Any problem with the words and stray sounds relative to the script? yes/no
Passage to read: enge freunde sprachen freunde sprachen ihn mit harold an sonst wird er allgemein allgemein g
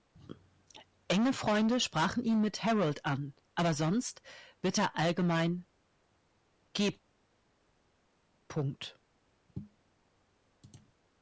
yes